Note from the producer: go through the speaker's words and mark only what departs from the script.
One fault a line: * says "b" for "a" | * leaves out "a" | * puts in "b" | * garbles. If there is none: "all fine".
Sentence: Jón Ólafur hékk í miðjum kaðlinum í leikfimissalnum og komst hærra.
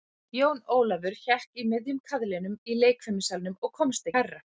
all fine